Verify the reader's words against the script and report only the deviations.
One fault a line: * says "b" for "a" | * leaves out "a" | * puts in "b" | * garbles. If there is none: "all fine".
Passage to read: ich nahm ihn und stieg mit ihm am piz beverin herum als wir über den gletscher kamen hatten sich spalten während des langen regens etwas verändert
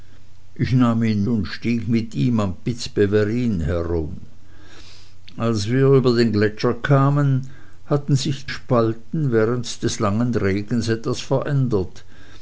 all fine